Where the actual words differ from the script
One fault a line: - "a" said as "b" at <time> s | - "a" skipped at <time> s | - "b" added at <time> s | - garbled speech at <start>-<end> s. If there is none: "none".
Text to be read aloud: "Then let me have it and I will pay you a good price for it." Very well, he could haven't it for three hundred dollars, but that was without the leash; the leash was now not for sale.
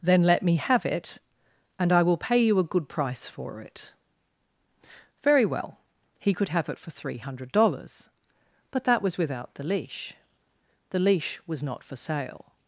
- "haven't" said as "have" at 6.5 s
- "now" skipped at 11.6 s